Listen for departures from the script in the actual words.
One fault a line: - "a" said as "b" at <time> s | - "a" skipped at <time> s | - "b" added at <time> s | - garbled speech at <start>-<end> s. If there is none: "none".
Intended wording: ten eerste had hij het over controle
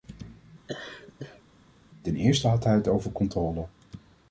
none